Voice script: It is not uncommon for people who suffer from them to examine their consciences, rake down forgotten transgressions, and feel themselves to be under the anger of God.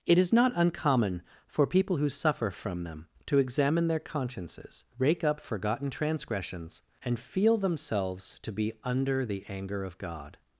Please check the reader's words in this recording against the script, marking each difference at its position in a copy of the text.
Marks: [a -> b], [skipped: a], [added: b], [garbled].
It is not uncommon for people who suffer from them to examine their consciences, rake [down -> up] forgotten transgressions, and feel themselves to be under the anger of God.